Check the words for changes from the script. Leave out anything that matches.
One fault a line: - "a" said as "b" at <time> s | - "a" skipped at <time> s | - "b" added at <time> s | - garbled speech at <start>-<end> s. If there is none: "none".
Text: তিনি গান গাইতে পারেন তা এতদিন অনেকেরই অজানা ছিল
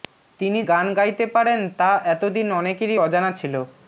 none